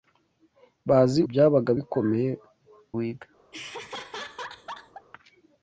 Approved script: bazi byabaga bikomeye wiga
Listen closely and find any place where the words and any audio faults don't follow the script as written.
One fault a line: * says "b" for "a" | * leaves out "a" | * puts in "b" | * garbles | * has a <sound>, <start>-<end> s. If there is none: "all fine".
* has a laugh, 3.5-5.1 s